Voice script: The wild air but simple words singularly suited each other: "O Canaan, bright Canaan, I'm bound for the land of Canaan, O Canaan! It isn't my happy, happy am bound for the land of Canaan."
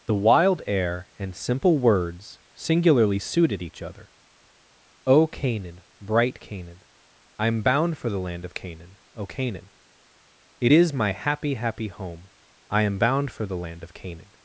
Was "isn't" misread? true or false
true